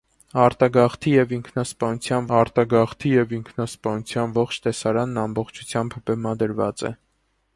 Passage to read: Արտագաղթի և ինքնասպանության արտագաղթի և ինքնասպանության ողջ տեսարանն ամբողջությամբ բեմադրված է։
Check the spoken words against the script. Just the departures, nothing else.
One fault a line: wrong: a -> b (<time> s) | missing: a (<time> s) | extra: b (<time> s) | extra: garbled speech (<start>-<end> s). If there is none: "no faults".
no faults